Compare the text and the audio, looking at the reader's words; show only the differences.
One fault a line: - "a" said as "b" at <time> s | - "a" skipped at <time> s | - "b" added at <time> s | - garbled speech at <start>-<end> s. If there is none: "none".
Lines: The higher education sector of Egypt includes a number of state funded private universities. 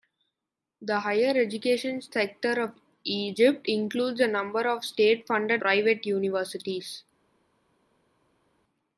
none